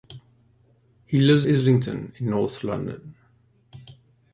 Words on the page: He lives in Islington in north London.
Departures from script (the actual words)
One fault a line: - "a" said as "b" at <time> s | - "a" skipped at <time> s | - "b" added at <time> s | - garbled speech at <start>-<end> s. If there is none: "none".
- "in" skipped at 1.4 s